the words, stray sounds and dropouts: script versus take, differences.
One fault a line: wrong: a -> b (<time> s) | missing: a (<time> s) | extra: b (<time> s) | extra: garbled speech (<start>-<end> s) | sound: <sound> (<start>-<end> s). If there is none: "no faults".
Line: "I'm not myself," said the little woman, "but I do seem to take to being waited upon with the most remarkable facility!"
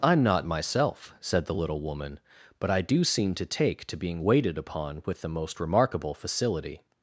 no faults